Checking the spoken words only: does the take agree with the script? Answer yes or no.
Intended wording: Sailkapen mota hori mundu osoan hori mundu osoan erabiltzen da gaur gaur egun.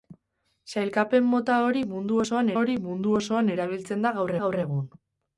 yes